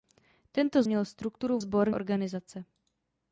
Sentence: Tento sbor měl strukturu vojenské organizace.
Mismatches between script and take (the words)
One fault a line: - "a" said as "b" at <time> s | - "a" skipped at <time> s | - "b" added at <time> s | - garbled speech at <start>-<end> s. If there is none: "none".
- "sbor" skipped at 0.8 s
- "vojenské" said as "sbor" at 1.6 s